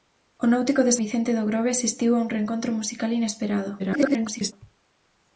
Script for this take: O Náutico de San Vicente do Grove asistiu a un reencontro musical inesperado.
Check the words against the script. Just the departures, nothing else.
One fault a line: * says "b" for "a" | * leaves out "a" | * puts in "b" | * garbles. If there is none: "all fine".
* leaves out "San"
* garbles